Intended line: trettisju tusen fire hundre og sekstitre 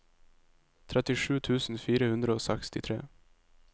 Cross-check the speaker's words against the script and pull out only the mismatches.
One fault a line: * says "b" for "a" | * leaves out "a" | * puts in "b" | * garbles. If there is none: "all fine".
all fine